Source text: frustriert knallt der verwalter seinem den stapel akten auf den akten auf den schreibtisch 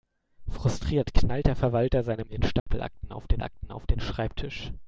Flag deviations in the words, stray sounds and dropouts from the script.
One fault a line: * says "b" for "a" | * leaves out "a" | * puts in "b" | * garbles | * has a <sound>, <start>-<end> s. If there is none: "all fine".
* has a dropout, 2.6-2.7 s